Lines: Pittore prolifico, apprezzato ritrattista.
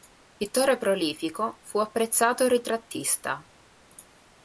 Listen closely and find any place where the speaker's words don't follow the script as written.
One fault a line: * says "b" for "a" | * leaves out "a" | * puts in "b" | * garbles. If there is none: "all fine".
* puts in "fu"